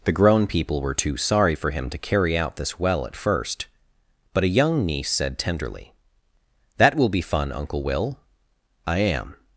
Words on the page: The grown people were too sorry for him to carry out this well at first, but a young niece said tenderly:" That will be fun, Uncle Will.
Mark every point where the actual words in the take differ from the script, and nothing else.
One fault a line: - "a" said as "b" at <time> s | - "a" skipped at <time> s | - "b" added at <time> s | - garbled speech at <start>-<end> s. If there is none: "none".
- "I am" added at 8.9 s